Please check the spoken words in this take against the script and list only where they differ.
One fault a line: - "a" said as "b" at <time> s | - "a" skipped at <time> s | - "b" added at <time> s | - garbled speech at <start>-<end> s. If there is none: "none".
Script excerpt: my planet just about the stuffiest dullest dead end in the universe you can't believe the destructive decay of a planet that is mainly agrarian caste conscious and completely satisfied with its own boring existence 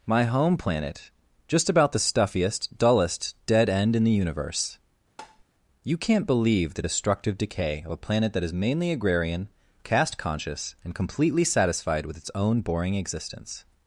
- "home" added at 0.2 s